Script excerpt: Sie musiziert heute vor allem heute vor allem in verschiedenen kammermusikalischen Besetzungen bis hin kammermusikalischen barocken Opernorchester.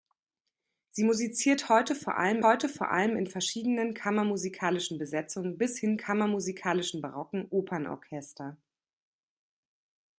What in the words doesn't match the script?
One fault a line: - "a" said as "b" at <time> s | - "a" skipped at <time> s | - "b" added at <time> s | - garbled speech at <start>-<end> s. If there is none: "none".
none